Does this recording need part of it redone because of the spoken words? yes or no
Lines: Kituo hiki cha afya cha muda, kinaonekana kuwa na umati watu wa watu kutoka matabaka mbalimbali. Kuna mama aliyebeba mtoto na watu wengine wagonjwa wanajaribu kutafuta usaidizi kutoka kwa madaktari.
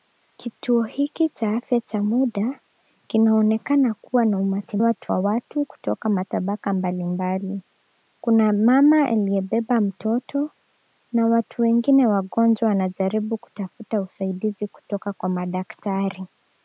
no